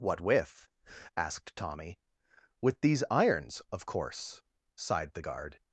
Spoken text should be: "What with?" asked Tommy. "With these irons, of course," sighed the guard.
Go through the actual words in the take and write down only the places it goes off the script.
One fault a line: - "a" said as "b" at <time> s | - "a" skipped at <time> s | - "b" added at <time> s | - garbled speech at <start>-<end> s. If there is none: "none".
none